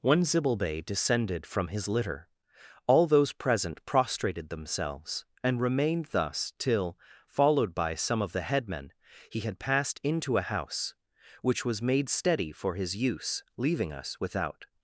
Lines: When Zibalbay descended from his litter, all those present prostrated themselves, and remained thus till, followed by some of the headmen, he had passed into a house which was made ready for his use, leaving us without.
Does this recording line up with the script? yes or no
no